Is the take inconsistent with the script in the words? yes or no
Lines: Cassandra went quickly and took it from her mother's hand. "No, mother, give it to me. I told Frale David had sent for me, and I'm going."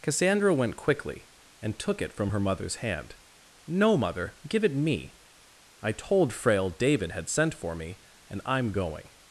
yes